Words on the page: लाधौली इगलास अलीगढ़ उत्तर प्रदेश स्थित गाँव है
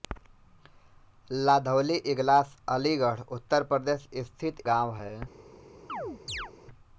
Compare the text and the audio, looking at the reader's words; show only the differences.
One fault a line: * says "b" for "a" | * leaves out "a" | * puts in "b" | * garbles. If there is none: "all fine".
all fine